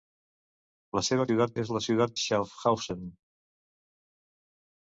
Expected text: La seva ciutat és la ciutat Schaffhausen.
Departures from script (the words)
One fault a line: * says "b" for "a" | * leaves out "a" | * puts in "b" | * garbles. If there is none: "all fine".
all fine